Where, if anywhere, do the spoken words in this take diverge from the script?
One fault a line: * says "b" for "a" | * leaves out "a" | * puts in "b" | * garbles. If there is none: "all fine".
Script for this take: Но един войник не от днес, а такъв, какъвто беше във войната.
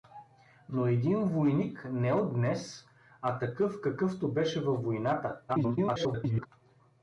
* garbles